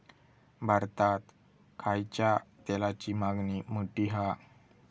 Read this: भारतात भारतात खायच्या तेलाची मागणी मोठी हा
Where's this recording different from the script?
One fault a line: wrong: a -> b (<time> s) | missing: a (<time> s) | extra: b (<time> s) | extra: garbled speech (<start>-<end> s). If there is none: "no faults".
missing: भारतात (1.2 s)